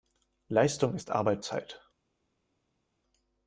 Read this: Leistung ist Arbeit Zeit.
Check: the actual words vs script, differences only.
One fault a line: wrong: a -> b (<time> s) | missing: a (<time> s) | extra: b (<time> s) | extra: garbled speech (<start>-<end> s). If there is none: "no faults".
no faults